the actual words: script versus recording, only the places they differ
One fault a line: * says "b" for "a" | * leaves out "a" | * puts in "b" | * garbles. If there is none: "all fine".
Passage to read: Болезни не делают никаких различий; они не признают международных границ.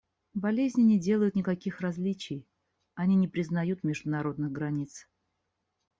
all fine